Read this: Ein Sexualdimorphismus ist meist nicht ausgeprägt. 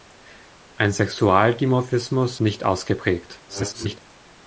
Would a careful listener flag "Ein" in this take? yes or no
no